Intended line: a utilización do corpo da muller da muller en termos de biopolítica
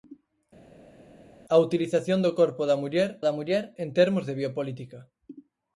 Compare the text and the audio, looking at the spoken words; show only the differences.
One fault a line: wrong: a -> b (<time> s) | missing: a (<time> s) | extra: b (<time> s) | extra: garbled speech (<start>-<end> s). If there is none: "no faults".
no faults